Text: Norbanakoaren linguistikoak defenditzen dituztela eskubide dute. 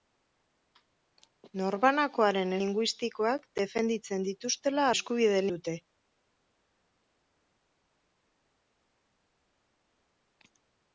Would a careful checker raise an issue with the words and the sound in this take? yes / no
no